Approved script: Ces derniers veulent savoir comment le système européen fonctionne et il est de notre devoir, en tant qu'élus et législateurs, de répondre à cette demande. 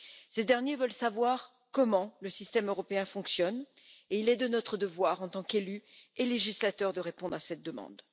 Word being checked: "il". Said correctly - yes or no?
yes